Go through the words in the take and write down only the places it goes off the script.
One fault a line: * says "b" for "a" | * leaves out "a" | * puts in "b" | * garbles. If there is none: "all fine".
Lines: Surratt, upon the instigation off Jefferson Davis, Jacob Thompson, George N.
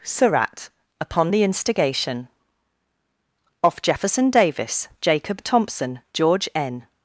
all fine